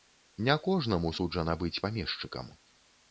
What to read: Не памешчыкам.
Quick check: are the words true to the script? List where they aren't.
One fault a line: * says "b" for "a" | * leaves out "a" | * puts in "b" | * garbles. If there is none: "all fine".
* puts in "кожнаму суджана быць"